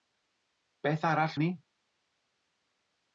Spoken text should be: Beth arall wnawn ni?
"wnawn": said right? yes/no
no